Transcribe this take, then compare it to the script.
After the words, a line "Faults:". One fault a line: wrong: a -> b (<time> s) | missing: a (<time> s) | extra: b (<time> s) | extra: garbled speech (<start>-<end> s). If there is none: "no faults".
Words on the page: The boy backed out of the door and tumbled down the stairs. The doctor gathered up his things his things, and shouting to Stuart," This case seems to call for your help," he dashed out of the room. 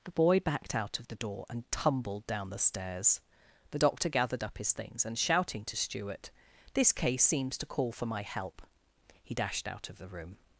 The boy backed out of the door and tumbled down the stairs. The doctor gathered up his things, and shouting to Stuart," This case seems to call for my help," he dashed out of the room.
Faults:
missing: his things (5.0 s)
wrong: your -> my (8.1 s)